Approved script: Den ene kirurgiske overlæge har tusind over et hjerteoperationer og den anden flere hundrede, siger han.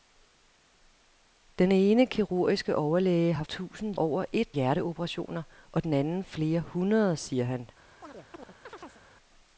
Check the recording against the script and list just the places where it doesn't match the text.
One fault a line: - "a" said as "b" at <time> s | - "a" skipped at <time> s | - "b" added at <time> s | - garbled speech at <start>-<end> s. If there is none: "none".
none